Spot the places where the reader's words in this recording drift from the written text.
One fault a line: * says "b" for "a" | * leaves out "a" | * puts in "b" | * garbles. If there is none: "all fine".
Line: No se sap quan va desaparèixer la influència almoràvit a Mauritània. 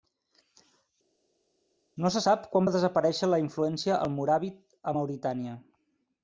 all fine